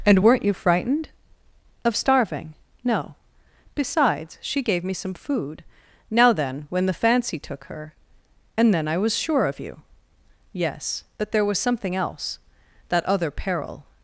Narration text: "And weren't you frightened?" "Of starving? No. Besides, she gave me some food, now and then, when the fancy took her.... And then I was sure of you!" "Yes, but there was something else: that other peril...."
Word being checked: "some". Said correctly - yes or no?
yes